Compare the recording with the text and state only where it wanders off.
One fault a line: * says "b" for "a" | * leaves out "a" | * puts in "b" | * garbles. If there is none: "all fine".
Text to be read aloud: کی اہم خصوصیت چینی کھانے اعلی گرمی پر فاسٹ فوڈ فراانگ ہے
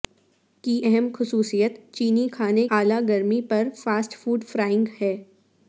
all fine